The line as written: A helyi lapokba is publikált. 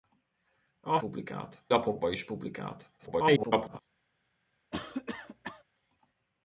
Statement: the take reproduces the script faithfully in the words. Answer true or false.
false